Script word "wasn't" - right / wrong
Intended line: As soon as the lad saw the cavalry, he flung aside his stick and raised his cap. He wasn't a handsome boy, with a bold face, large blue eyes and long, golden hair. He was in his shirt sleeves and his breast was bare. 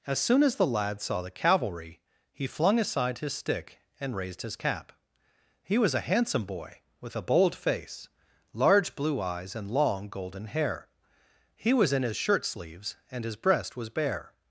wrong